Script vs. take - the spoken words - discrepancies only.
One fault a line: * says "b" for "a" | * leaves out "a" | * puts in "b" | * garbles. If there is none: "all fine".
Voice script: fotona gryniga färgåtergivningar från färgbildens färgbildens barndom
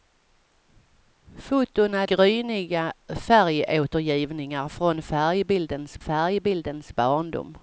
all fine